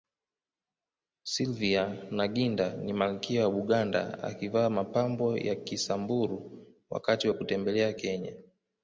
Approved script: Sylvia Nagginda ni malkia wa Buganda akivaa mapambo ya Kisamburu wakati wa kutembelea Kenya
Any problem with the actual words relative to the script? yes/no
no